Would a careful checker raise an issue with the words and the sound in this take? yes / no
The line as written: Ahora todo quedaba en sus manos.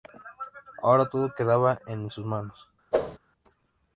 yes